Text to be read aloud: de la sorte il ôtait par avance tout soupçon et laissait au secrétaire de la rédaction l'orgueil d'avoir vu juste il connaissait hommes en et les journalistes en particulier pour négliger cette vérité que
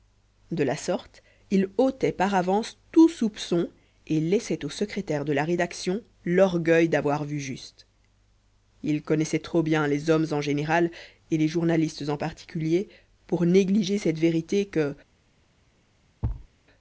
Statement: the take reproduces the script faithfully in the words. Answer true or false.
false